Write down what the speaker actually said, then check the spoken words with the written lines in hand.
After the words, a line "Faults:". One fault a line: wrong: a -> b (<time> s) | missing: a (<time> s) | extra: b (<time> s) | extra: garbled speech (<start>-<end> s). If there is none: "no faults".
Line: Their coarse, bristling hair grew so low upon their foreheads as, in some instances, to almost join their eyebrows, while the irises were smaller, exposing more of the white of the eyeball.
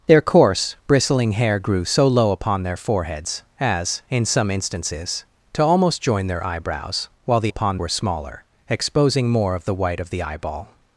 Their coarse, bristling hair grew so low upon their foreheads as, in some instances, to almost join their eyebrows, while the upon were smaller, exposing more of the white of the eyeball.
Faults:
wrong: irises -> upon (7.5 s)